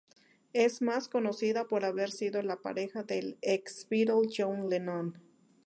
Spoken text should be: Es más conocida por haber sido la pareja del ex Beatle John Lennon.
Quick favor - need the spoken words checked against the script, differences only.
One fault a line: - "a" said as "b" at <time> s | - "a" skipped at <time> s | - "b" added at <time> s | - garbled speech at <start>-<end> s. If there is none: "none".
none